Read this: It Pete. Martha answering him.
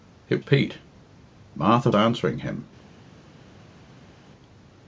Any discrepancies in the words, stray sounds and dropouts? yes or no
no